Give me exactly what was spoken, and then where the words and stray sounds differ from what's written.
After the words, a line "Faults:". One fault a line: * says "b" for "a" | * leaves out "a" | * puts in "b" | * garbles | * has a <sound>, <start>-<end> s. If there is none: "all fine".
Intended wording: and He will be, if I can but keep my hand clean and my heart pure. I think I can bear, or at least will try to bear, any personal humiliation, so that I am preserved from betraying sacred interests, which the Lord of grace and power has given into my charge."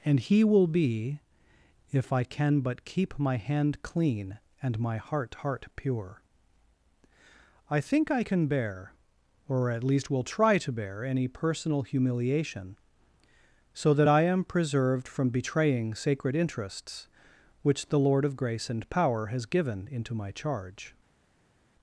and He will be, if I can but keep my hand clean and my heart heart pure. I think I can bear, or at least will try to bear, any personal humiliation, so that I am preserved from betraying sacred interests, which the Lord of grace and power has given into my charge."
Faults:
* puts in "heart"